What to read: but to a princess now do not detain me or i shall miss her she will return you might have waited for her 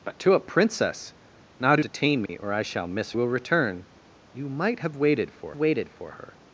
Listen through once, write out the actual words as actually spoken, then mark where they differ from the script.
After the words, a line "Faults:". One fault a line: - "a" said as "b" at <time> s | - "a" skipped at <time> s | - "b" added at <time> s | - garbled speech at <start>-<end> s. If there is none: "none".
but to a princess now do detain me or i shall miss will return you might have waited for waited for her
Faults:
- "not" skipped at 1.8 s
- "her she" skipped at 3.1 s
- "waited for" added at 5.5 s